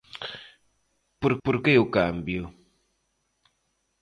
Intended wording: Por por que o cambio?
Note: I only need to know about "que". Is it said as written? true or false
true